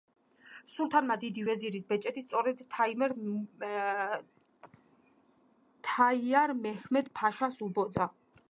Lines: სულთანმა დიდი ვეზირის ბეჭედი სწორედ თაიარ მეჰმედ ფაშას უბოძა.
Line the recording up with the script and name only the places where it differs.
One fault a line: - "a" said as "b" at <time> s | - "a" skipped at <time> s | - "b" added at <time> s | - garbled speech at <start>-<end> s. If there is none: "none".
none